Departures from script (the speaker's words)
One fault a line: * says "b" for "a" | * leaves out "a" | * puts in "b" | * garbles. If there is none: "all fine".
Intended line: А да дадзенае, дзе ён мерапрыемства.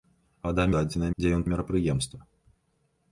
all fine